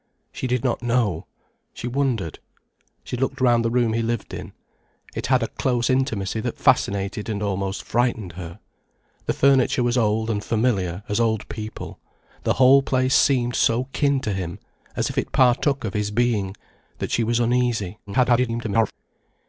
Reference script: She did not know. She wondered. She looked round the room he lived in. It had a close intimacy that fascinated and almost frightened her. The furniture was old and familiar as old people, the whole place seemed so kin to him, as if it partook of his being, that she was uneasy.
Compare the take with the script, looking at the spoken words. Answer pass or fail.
fail